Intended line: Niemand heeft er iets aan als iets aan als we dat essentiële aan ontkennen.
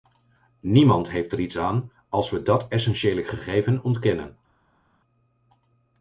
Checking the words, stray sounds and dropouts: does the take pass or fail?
fail